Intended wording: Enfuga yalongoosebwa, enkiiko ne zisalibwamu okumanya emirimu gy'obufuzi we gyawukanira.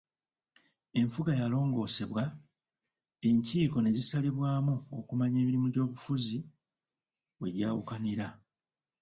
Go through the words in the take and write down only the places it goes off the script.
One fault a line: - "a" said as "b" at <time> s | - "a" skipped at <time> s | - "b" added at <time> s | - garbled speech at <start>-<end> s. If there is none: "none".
none